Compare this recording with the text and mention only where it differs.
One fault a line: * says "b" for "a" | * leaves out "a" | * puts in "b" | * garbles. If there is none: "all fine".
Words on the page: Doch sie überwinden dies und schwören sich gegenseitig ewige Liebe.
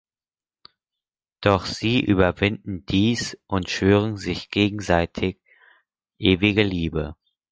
all fine